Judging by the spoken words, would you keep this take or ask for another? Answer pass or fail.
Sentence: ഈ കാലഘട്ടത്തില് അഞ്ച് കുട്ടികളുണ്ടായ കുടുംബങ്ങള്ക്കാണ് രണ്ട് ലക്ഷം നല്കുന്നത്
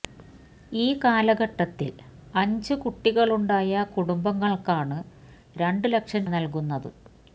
pass